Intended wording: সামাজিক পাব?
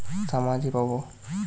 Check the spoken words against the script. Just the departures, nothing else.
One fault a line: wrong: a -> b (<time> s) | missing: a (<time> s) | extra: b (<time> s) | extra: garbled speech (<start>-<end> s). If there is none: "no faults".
no faults